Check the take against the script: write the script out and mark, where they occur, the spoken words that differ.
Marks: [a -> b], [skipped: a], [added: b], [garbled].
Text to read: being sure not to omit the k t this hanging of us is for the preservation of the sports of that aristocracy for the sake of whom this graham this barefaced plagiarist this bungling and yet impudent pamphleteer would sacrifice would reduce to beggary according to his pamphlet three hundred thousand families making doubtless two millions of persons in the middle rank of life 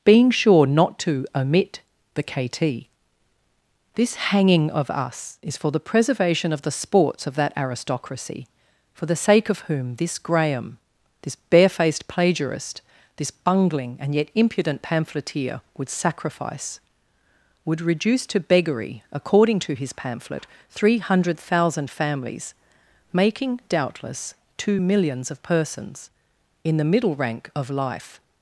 being sure not to omit the k t this hanging of us is for the preservation of the sports of that aristocracy for the sake of whom this graham this barefaced plagiarist this bungling and yet impudent pamphleteer would sacrifice would reduce to beggary according to his pamphlet three hundred thousand families making doubtless two millions of persons in the middle rank of life